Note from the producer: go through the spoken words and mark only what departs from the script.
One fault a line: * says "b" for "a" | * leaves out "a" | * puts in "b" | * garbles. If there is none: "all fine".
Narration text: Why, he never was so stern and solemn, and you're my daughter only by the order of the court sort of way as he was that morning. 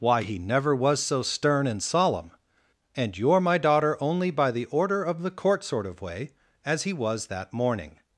all fine